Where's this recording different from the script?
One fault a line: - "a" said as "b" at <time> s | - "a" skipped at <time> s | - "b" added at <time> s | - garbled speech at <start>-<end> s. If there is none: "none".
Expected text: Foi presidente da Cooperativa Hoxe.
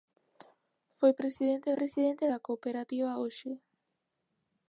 - "presidente" added at 1.8 s